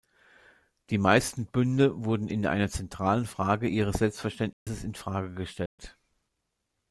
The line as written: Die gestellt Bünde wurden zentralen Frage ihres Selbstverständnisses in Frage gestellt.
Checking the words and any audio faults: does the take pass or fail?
fail